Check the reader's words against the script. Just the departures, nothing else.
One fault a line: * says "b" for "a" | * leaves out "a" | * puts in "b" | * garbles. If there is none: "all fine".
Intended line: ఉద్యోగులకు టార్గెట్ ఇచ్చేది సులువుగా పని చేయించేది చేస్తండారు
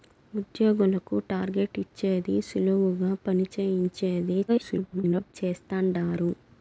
* garbles